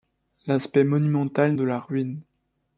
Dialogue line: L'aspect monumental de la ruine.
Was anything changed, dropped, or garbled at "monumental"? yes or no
no